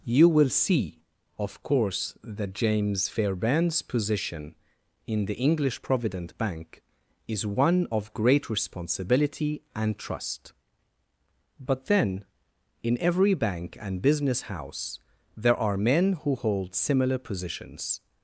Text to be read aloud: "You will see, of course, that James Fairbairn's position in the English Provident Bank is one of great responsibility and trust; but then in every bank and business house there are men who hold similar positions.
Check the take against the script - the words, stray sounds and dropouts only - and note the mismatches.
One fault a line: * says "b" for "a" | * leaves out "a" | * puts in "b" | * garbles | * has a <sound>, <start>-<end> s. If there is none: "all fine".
all fine